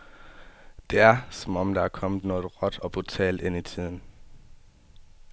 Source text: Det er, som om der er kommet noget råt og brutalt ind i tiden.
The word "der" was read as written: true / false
true